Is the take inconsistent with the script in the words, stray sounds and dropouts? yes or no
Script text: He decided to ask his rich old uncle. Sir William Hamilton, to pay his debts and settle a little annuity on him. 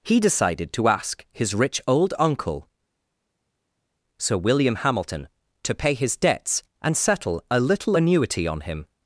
no